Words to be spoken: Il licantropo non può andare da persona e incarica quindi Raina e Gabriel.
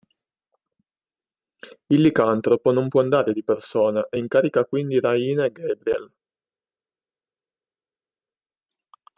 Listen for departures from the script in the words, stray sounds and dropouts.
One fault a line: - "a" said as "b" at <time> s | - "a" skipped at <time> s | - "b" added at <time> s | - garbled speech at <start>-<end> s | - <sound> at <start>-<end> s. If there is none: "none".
- "da" said as "di" at 3.3 s